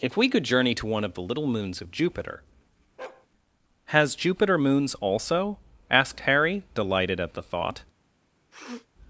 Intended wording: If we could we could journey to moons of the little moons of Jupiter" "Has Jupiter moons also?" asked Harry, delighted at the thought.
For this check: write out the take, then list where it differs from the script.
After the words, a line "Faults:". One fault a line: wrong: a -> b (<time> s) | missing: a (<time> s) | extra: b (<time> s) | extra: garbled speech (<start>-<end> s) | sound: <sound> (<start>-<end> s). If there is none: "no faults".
If we could journey to one of the little moons of Jupiter" "Has Jupiter moons also?" asked Harry, delighted at the thought.
Faults:
missing: we could (0.4 s)
wrong: moons -> one (0.9 s)
sound: bark (3.0-3.3 s)
sound: sniff (8.5-8.9 s)